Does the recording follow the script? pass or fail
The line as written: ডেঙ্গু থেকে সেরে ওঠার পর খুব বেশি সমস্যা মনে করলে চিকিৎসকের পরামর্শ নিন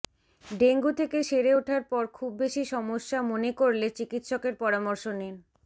pass